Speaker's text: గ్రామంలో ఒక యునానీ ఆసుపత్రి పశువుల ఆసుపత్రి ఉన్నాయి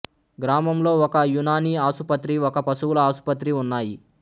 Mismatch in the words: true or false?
true